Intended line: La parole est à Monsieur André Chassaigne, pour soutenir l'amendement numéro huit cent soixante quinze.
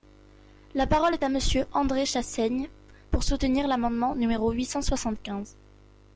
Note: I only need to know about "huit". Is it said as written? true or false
true